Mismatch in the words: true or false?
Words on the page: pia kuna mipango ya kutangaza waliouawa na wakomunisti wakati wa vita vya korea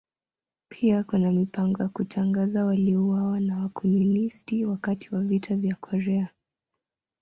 false